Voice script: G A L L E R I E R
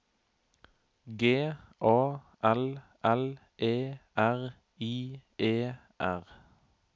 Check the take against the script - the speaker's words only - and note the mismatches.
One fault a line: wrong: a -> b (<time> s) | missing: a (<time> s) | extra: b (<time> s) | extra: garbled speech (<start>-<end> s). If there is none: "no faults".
no faults